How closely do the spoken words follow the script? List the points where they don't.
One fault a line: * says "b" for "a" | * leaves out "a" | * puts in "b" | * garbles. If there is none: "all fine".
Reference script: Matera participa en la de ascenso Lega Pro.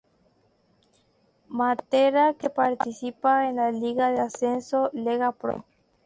* puts in "que"
* puts in "liga"